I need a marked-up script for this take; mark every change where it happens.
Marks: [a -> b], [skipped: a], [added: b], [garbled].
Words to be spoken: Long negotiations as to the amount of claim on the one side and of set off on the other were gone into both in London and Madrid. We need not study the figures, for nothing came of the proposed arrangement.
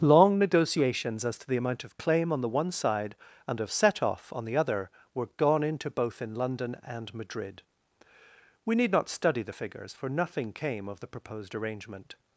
Long negotiations as to the amount of claim on the one side and of set off on the other were gone into both in London and Madrid. We need not study the figures, for nothing came of the proposed arrangement.